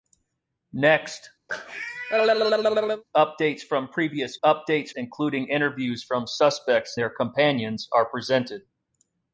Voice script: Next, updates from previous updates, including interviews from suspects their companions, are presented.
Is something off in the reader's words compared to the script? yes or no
no